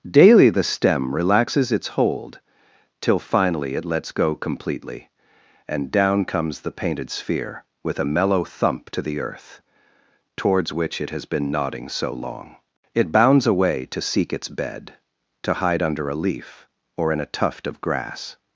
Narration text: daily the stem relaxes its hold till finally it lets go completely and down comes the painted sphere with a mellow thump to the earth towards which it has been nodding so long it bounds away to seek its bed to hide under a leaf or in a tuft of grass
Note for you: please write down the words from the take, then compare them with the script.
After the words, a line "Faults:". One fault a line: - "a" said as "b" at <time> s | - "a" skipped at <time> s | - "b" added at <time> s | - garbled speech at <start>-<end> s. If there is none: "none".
daily the stem relaxes its hold till finally it lets go completely and down comes the painted sphere with a mellow thump to the earth towards which it has been nodding so long it bounds away to seek its bed to hide under a leaf or in a tuft of grass
Faults:
none